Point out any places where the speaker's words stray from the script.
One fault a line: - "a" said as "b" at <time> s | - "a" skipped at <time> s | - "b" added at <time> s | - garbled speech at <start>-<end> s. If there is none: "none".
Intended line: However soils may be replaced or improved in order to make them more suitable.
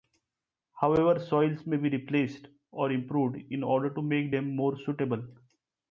none